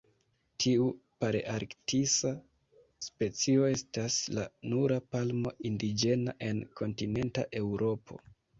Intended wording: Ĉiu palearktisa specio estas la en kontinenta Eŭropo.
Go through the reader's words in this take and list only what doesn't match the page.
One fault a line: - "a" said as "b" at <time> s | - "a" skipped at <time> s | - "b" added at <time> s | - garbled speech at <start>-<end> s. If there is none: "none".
- "Ĉiu" said as "Tiu" at 0.6 s
- "nura palmo indiĝena" added at 4.8 s